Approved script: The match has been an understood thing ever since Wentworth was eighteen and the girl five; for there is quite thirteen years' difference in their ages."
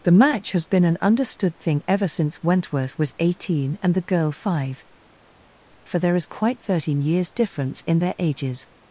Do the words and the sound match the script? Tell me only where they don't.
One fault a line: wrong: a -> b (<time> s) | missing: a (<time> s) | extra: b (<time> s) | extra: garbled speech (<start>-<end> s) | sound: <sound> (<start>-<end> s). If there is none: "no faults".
no faults